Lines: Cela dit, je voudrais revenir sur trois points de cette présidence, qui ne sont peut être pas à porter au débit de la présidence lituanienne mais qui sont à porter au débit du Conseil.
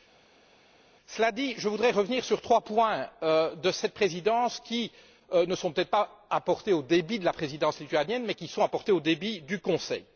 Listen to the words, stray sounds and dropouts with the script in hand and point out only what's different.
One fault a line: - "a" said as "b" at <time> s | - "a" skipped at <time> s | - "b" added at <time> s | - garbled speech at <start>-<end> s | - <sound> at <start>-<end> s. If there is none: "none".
none